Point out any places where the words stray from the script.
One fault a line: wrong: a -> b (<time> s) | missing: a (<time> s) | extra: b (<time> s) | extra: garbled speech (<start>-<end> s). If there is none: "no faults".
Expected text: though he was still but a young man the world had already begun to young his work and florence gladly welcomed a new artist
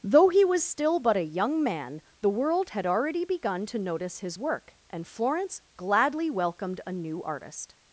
wrong: young -> notice (3.8 s)